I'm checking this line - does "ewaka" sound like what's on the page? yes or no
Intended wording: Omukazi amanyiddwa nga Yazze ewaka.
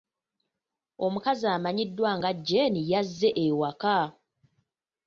yes